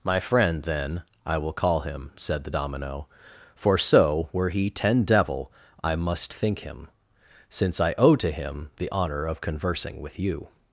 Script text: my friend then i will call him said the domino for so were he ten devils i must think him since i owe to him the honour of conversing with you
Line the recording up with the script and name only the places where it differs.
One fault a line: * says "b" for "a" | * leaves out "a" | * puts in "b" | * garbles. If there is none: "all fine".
* says "devil" for "devils"